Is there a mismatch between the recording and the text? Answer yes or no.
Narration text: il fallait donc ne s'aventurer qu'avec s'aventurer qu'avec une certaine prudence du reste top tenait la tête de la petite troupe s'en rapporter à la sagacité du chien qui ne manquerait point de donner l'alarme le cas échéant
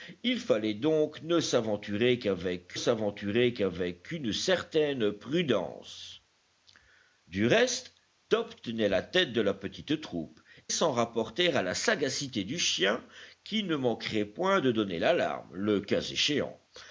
no